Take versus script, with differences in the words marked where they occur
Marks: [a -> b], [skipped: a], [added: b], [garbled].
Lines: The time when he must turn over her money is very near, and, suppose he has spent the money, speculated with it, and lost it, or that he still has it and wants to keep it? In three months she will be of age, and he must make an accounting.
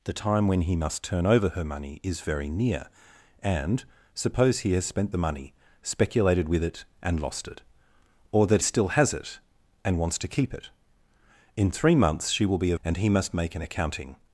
The time when he must turn over her money is very near, and, suppose he has spent the money, speculated with it, and lost it, or that [skipped: he] still has it and wants to keep it? In three months she will be of [skipped: age,] and he must make an accounting.